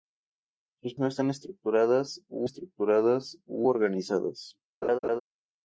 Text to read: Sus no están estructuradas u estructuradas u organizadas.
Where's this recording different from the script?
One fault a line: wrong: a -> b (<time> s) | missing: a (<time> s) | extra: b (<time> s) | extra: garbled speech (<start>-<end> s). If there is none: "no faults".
no faults